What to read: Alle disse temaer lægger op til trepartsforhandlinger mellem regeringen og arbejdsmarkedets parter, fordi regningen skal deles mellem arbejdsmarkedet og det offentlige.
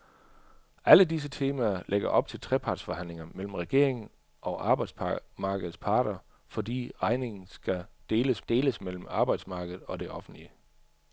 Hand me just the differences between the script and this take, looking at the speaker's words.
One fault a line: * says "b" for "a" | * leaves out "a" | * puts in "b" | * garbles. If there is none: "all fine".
* puts in "deles"